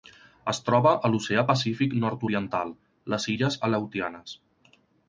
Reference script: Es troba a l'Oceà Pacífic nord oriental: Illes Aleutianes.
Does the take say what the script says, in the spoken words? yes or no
no